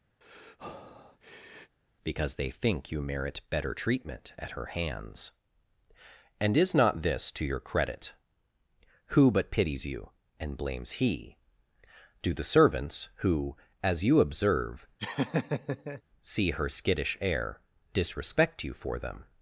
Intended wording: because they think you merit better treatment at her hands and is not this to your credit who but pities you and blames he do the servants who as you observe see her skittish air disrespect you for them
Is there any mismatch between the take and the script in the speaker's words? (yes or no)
no